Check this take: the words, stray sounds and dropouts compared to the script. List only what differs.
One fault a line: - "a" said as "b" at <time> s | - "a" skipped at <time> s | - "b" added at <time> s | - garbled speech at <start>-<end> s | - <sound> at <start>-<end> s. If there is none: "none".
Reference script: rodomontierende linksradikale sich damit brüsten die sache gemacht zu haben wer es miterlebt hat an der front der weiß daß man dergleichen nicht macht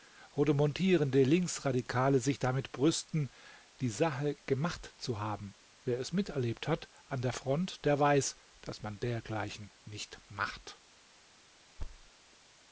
- thud at 11.8-12.1 s